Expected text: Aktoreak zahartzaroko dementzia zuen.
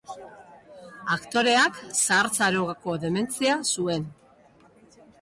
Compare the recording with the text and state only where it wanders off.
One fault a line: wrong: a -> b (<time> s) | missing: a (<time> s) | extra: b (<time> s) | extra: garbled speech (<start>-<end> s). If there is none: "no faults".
no faults